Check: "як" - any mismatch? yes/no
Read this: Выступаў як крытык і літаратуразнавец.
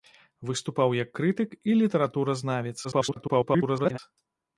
no